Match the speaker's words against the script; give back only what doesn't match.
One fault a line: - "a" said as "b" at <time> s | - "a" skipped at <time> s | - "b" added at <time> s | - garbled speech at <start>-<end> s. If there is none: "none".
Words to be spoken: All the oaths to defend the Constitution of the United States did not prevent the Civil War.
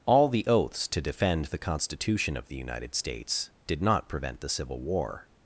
none